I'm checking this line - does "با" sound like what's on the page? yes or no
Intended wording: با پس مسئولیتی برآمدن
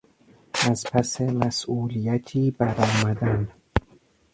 no